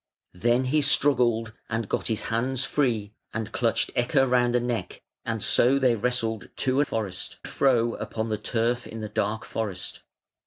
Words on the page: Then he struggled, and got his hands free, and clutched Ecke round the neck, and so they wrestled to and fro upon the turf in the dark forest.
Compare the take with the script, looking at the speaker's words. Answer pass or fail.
fail